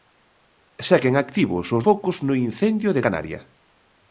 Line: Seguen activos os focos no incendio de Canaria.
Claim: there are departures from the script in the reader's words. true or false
false